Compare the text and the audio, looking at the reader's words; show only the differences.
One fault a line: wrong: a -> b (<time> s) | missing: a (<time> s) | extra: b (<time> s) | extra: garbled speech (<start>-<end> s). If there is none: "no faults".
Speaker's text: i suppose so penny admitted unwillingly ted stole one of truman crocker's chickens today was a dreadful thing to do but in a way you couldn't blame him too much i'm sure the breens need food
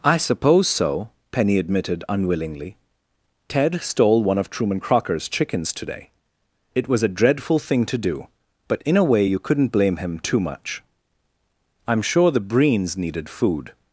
extra: it (6.7 s)
wrong: need -> needed (13.0 s)